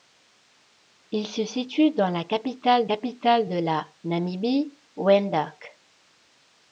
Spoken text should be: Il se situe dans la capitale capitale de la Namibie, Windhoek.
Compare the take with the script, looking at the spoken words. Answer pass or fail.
pass